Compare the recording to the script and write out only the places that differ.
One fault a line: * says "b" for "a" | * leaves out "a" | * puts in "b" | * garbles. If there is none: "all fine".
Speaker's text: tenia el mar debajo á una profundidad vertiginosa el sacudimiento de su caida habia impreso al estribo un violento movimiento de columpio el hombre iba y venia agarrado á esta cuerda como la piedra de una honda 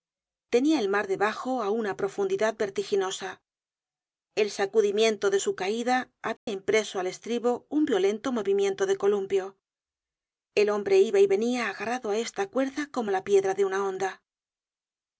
all fine